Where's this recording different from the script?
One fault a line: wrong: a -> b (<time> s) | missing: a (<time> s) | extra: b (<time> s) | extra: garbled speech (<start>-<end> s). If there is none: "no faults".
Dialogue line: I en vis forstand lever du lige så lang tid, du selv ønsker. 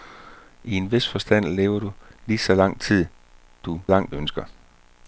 wrong: selv -> lang (3.9 s)